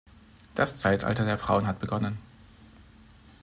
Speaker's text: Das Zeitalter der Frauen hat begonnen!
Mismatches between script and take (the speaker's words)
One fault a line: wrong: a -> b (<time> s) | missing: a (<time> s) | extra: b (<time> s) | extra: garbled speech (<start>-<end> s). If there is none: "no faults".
no faults